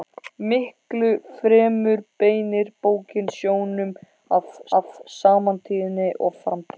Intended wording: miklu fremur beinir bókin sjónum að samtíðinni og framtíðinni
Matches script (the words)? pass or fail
fail